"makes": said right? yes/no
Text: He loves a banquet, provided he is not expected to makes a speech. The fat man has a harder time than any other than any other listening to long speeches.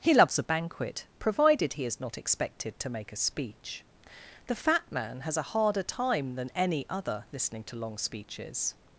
no